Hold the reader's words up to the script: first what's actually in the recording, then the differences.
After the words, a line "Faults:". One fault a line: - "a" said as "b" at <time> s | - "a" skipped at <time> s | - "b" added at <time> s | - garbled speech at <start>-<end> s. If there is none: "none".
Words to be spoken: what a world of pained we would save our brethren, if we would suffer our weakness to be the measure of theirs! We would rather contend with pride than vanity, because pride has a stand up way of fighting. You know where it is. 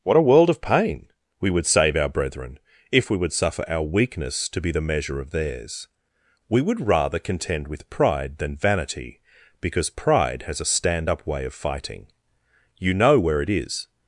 what a world of pain we would save our brethren, if we would suffer our weakness to be the measure of theirs! We would rather contend with pride than vanity, because pride has a stand up way of fighting. You know where it is.
Faults:
- "pained" said as "pain" at 0.6 s